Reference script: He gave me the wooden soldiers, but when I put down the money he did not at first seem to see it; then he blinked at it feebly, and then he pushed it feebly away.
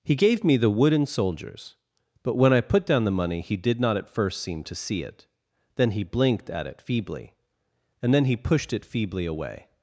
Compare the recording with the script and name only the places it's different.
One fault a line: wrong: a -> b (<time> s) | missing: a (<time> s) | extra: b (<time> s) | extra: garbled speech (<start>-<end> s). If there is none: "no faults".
no faults